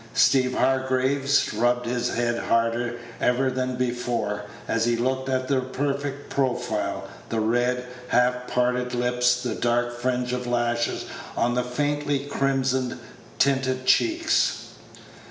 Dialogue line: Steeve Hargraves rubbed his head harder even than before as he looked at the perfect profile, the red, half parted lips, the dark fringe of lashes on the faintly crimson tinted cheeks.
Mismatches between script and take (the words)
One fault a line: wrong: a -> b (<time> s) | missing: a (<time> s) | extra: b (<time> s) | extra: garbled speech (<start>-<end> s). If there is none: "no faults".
no faults